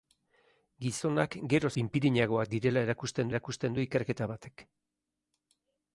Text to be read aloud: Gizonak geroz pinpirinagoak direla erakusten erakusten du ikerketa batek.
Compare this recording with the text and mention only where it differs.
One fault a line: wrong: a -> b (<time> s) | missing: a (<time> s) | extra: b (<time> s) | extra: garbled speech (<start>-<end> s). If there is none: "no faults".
no faults